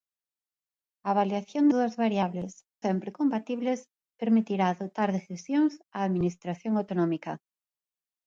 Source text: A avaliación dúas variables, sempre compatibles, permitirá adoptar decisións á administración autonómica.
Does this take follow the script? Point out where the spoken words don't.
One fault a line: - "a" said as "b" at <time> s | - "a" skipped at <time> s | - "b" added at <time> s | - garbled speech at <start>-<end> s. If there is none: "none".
none